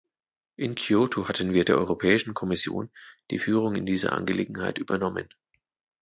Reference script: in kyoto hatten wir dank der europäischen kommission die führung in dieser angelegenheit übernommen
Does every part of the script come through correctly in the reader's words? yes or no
no